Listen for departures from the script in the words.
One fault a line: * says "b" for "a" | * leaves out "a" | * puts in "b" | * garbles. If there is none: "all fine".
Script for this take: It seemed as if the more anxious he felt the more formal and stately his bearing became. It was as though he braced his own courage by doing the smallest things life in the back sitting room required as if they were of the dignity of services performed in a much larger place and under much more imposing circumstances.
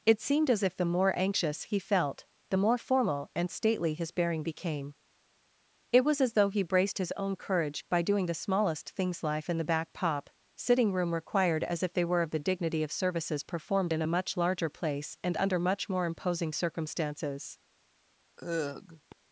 * puts in "pop"